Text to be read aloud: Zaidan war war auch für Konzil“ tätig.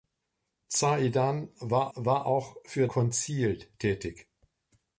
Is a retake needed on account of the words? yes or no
no